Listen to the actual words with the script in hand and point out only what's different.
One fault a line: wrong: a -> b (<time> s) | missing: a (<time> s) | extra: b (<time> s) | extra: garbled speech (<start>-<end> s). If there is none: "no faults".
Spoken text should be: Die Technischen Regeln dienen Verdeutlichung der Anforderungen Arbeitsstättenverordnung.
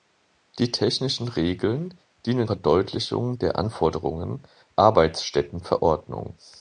no faults